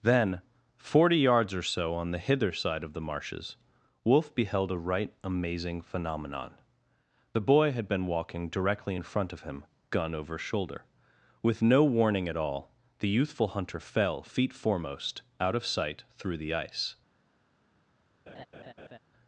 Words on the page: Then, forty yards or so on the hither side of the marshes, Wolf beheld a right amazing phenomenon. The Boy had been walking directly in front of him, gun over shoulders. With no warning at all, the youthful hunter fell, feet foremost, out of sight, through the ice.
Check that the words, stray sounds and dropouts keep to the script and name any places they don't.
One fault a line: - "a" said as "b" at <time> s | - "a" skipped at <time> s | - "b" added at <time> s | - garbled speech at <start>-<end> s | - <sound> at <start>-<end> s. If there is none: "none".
- "shoulders" said as "shoulder" at 10.4 s
- laugh at 18.3-19.0 s